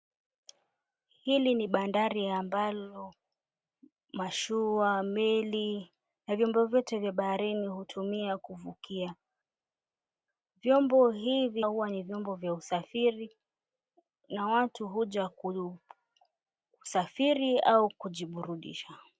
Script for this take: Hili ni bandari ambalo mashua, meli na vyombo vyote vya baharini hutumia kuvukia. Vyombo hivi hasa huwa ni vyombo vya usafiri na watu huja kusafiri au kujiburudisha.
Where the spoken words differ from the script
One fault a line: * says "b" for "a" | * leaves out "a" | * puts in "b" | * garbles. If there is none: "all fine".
* leaves out "hasa"